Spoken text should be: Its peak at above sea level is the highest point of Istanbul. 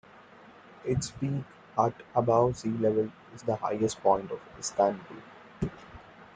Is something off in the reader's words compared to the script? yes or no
no